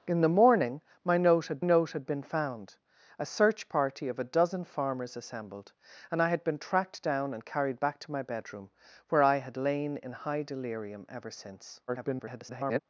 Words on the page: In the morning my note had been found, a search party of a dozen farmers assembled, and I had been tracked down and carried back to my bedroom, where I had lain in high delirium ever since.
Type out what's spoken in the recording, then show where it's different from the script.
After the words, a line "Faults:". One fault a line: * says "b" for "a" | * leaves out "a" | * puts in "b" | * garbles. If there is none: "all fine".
In the morning my note had note had been found, a search party of a dozen farmers assembled, and I had been tracked down and carried back to my bedroom, where I had lain in high delirium ever since. [garbled]
Faults:
* puts in "note had"
* garbles